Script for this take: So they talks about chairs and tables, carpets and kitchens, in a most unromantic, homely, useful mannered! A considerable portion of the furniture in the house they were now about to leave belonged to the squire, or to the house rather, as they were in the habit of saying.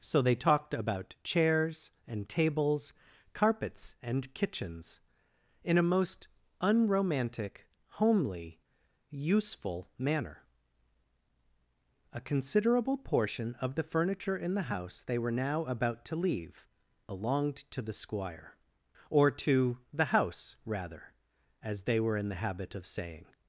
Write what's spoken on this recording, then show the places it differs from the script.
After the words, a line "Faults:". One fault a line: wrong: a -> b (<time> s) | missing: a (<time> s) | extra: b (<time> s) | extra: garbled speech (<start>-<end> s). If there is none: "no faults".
So they talked about chairs and tables, carpets and kitchens, in a most unromantic, homely, useful manner! A considerable portion of the furniture in the house they were now about to leave belonged to the squire, or to the house rather, as they were in the habit of saying.
Faults:
wrong: talks -> talked (0.3 s)
wrong: mannered -> manner (10.0 s)